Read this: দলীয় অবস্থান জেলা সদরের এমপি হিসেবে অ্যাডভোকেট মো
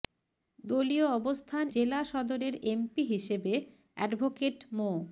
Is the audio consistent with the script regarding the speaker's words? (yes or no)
yes